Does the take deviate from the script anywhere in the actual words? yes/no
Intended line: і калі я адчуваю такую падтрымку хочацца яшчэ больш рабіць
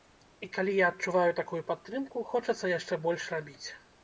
no